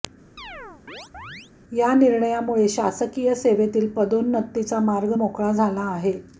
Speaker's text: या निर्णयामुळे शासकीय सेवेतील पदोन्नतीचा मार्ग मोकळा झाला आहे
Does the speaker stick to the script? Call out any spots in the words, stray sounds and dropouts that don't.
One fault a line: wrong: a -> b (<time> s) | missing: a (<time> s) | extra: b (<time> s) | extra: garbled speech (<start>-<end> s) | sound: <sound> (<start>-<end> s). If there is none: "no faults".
sound: chirp (0.4-1.5 s)